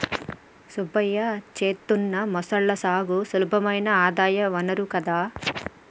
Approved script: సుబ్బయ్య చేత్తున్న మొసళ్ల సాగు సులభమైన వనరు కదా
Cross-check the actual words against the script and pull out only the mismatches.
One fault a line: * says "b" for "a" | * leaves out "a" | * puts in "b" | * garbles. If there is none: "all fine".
* puts in "ఆదాయ"